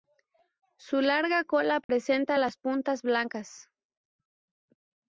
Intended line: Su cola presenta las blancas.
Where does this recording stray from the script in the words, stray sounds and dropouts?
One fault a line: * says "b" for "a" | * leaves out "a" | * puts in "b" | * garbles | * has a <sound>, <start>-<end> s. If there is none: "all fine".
* puts in "larga"
* has a dropout, 1.8-1.9 s
* puts in "puntas"